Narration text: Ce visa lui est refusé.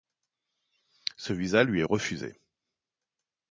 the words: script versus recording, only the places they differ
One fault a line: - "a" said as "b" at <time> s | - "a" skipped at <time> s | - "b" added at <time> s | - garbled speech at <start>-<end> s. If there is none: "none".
none